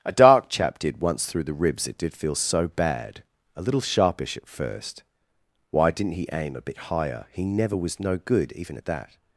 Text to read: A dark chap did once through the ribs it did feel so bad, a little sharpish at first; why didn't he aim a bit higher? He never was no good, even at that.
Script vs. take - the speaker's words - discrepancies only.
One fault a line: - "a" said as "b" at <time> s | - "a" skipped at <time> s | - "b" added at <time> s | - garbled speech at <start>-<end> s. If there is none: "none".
none